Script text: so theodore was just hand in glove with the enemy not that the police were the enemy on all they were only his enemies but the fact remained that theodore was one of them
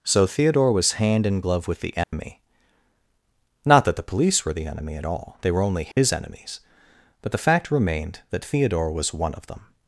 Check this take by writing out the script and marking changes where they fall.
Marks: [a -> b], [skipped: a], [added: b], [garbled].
so theodore was [skipped: just] hand in glove with the enemy not that the police were the enemy [on -> at] all they were only his enemies but the fact remained that theodore was one of them